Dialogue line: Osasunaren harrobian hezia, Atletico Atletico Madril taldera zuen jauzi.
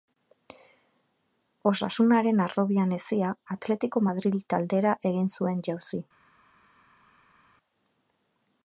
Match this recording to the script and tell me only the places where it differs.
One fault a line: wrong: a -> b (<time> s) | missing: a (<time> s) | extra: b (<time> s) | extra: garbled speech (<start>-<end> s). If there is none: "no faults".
missing: Atletico (4.0 s)
extra: egin (5.1 s)